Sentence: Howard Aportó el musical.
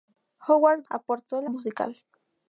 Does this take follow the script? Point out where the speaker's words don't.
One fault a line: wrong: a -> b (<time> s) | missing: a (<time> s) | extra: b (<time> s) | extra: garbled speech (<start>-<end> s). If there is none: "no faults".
no faults